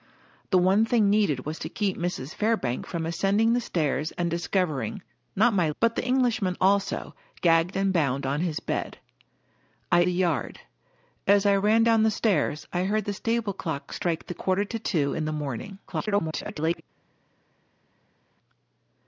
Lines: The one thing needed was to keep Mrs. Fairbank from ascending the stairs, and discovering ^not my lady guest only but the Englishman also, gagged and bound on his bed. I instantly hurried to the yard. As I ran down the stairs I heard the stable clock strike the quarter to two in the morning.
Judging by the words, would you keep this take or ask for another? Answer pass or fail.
fail